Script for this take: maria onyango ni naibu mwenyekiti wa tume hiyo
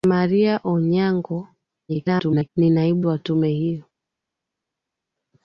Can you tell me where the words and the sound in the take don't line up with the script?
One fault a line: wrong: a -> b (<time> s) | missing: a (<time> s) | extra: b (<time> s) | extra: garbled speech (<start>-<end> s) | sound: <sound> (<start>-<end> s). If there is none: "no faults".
extra: garbled speech (1.9-2.5 s)
missing: mwenyekiti (3.0 s)